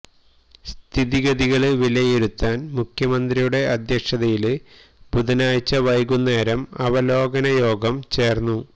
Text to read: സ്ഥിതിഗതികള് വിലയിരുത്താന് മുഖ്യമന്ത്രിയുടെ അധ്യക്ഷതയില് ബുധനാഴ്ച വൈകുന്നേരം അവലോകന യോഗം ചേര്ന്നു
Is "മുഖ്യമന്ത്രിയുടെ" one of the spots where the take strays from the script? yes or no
no